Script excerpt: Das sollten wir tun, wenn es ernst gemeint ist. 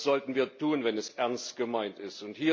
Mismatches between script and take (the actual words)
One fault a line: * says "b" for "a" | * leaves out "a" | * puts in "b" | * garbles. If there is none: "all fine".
all fine